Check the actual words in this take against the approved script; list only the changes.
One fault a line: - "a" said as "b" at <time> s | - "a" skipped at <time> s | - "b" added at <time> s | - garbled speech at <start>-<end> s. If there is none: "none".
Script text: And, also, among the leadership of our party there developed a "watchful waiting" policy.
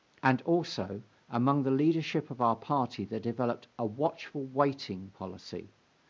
none